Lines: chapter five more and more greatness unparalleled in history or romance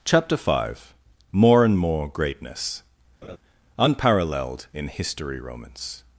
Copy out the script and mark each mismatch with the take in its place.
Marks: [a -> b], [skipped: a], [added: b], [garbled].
chapter five more and more greatness unparalleled in history [skipped: or] romance